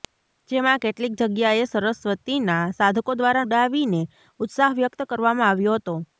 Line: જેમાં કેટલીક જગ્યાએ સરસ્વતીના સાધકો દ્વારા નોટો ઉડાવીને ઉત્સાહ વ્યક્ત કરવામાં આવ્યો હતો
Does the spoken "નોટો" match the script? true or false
false